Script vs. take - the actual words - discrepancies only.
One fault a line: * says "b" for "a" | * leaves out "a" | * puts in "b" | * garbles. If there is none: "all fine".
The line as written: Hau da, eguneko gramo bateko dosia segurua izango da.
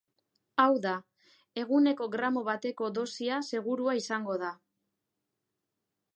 all fine